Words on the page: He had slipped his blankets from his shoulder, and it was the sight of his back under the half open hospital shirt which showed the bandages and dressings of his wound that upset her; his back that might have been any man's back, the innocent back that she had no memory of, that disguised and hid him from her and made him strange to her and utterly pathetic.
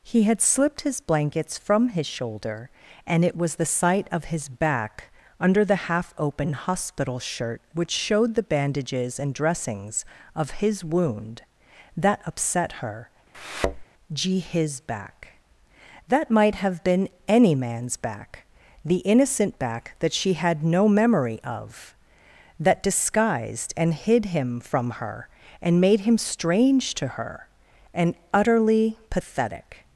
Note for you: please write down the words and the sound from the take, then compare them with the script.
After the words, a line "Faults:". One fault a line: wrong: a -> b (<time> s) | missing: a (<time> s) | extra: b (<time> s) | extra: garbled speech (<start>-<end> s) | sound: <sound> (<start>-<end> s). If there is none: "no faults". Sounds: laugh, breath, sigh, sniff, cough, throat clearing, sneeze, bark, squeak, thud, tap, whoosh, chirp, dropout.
He had slipped his blankets from his shoulder, and it was the sight of his back under the half open hospital shirt which showed the bandages and dressings of his wound that upset her; gee his back that might have been any man's back, the innocent back that she had no memory of, that disguised and hid him from her and made him strange to her and utterly pathetic.
Faults:
sound: thud (13.3-13.8 s)
extra: gee (14.1 s)